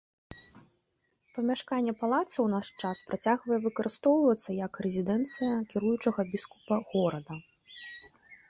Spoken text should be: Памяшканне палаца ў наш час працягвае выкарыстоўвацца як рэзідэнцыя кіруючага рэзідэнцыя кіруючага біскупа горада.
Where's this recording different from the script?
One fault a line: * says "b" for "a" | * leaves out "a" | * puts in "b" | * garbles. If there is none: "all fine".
* leaves out "рэзідэнцыя кіруючага"